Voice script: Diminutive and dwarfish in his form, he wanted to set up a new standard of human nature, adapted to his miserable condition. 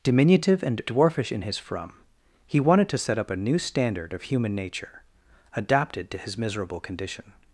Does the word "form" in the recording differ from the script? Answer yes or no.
yes